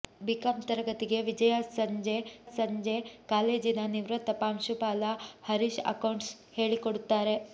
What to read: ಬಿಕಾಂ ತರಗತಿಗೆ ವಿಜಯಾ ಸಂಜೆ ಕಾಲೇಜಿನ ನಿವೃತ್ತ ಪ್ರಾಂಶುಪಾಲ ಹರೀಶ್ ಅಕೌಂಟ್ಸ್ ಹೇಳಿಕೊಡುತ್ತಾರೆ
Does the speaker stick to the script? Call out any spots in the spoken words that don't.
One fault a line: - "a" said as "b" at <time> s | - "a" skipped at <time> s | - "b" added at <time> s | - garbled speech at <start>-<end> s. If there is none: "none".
- "ಸಂಜೆ" added at 2.5 s